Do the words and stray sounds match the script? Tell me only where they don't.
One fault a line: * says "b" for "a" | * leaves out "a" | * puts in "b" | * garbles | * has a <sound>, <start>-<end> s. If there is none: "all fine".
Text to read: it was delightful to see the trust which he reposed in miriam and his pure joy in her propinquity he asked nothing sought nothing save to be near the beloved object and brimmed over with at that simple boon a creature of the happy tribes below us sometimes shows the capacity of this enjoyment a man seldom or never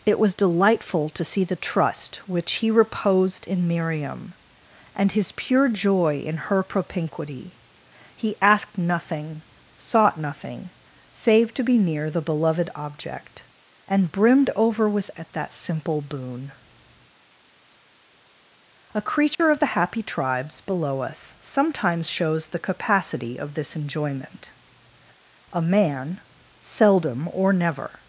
* has a dropout, 19.4-19.4 s